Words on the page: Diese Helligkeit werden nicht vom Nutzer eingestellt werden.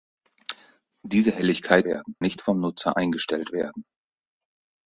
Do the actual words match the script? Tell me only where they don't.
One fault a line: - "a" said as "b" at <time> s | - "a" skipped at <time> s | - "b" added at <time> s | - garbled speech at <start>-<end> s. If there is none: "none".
none